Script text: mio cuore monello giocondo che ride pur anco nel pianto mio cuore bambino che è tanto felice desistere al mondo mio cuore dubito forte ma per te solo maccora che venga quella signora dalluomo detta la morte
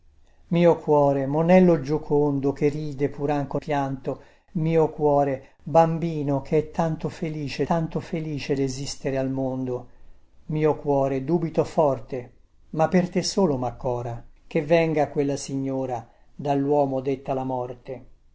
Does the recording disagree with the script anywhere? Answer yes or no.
yes